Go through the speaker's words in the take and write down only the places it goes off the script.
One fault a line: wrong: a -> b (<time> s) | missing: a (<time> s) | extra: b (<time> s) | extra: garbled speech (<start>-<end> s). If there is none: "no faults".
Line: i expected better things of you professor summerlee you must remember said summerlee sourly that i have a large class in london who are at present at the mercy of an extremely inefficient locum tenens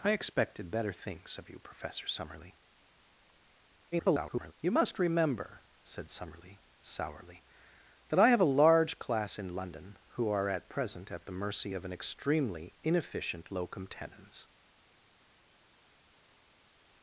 extra: garbled speech (3.9-4.5 s)